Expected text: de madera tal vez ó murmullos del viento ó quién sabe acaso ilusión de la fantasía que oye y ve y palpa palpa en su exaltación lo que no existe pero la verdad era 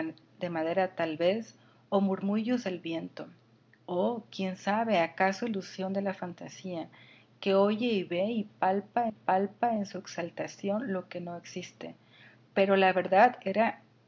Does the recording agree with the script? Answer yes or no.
yes